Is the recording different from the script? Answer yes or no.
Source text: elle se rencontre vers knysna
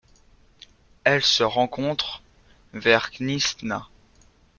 no